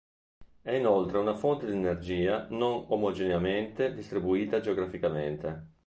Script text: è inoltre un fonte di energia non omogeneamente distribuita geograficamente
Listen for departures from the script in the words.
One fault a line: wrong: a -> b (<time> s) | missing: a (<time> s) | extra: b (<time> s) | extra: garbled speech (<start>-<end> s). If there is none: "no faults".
wrong: un -> una (1.2 s)